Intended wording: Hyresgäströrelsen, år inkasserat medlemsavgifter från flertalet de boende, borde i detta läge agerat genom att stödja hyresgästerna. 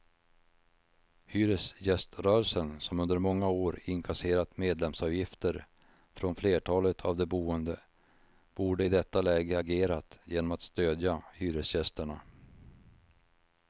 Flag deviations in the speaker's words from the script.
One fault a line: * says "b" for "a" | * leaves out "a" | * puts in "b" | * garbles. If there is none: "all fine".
* puts in "som under många"
* puts in "av"